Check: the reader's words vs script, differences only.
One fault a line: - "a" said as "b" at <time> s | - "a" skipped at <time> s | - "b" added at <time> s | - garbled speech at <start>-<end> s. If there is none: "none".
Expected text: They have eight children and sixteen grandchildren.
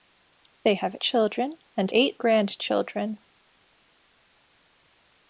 - "eight" skipped at 1.0 s
- "sixteen" said as "eight" at 1.9 s